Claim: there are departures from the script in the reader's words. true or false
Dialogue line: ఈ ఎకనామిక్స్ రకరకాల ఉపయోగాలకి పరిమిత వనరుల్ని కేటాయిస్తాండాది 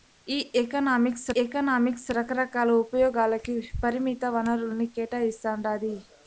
true